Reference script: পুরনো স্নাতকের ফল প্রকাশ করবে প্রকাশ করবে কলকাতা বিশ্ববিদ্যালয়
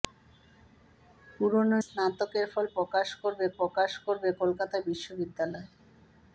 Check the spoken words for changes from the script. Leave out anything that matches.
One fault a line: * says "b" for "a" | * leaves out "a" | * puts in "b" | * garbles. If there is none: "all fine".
all fine